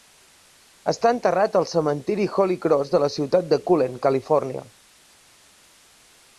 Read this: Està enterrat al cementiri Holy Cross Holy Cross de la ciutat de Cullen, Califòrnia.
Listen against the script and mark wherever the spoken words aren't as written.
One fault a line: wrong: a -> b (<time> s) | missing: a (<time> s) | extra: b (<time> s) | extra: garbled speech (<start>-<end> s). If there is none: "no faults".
missing: Holy Cross (3.0 s)